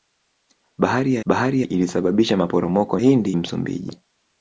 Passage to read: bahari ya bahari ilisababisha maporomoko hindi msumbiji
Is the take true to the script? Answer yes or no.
yes